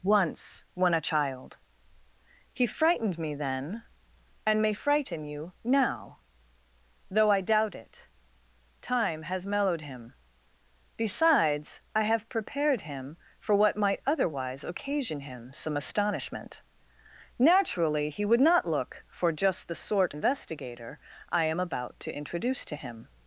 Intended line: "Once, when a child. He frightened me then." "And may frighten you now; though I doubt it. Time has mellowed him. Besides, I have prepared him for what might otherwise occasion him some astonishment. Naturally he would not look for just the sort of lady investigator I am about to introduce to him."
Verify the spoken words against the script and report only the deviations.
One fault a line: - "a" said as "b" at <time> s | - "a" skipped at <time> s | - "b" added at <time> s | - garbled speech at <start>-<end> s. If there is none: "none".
- "of lady" skipped at 20.1 s